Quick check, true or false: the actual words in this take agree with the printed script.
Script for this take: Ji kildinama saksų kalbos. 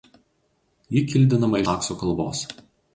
true